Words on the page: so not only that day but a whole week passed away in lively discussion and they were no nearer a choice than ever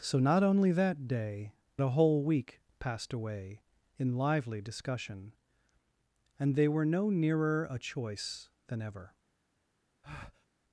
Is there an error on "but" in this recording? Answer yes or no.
yes